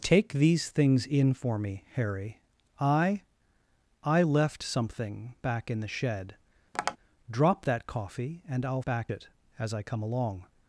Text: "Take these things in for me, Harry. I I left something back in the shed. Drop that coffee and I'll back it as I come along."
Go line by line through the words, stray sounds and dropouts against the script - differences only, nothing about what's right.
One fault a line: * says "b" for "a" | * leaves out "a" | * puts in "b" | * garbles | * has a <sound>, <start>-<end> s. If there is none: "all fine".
* has a tap, 6.7-7.0 s